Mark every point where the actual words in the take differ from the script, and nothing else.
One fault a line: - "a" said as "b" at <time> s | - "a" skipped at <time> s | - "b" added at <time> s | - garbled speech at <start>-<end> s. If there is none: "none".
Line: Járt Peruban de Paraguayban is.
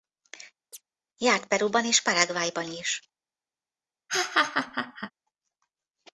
- "de" said as "és" at 1.8 s